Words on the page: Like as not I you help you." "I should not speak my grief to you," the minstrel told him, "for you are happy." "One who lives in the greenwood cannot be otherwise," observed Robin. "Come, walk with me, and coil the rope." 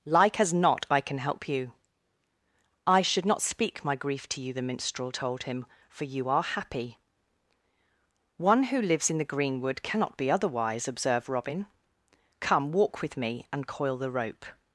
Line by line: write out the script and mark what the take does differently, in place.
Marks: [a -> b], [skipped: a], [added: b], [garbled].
Like as not I [you -> can] help you." "I should not speak my grief to you," the minstrel told him, "for you are happy." "One who lives in the greenwood cannot be otherwise," observed Robin. "Come, walk with me, and coil the rope."